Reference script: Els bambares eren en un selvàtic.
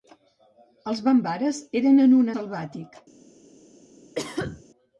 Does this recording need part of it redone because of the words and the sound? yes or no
yes